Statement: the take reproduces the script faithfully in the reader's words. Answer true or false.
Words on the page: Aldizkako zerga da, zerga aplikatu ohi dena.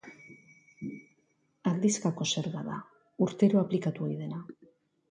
false